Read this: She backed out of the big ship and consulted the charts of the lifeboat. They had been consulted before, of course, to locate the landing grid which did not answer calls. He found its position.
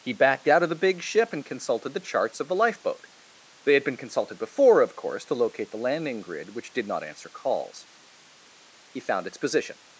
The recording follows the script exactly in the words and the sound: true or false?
false